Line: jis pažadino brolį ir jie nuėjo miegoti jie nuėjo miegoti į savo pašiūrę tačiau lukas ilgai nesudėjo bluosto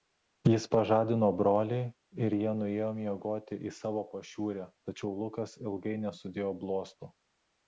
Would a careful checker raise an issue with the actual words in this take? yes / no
yes